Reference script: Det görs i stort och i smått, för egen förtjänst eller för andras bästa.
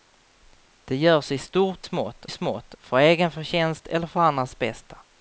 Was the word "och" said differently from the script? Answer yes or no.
yes